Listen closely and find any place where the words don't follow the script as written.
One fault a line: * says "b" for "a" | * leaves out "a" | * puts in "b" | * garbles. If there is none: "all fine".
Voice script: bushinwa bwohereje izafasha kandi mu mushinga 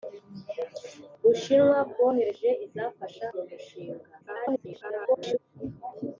* leaves out "kandi"
* garbles